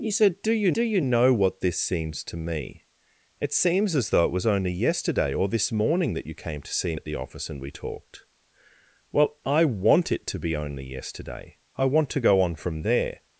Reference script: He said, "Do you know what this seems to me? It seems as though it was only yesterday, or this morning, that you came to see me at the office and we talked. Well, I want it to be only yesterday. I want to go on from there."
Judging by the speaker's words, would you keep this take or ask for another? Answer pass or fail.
fail